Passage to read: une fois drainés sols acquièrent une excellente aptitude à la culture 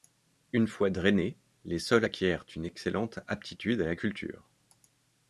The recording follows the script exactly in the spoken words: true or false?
false